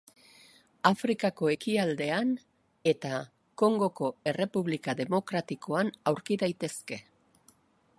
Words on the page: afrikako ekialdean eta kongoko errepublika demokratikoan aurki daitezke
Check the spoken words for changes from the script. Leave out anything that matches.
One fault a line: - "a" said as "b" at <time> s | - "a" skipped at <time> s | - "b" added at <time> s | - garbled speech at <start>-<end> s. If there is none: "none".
none